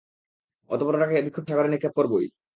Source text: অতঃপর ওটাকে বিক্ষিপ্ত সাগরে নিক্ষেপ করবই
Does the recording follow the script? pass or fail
pass